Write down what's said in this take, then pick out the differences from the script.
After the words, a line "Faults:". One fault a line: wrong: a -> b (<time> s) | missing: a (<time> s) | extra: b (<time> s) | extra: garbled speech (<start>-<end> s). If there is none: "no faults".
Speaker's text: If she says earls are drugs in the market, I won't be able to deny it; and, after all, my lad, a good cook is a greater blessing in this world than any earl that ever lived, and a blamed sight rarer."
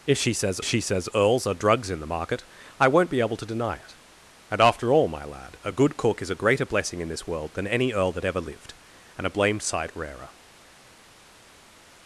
If she says she says earls are drugs in the market, I won't be able to deny it; and, after all, my lad, a good cook is a greater blessing in this world than any earl that ever lived, and a blamed sight rarer."
Faults:
extra: she says (0.6 s)